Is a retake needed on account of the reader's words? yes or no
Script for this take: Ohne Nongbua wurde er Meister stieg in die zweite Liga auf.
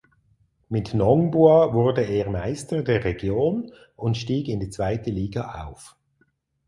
yes